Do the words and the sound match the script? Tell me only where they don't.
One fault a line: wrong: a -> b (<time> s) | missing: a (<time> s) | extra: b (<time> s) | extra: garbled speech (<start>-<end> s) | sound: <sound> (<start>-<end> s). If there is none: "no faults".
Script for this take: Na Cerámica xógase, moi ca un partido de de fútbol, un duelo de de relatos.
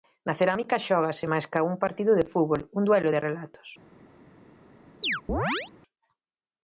wrong: moi -> máis (1.3 s)
missing: de (2.3 s)
missing: de (3.2 s)
sound: chirp (5.0-5.7 s)